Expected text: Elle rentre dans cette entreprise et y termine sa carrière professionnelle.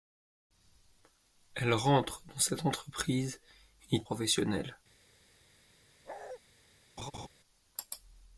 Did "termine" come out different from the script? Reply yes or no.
yes